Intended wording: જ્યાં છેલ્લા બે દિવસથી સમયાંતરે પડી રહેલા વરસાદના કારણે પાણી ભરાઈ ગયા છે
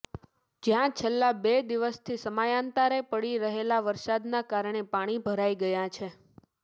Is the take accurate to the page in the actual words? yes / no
yes